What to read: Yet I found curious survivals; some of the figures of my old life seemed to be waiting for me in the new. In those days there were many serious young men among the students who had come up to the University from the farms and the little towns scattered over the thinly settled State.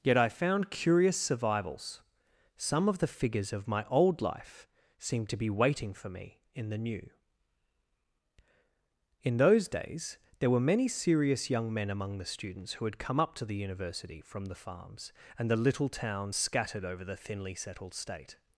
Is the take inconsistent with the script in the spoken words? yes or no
no